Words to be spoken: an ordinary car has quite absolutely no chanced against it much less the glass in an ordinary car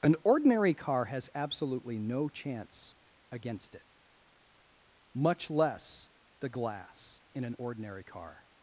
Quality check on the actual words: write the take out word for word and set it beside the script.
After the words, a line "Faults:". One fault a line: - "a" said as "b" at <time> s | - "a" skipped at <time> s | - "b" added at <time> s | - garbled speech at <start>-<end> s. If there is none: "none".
an ordinary car has absolutely no chance against it much less the glass in an ordinary car
Faults:
- "quite" skipped at 1.3 s
- "chanced" said as "chance" at 2.3 s